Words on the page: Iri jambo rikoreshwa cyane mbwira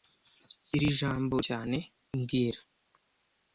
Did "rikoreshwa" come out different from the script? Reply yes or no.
yes